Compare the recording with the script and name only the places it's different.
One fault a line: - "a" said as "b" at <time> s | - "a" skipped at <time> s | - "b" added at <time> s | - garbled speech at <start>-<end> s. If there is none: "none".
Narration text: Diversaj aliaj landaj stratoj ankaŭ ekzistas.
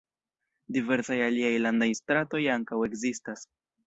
none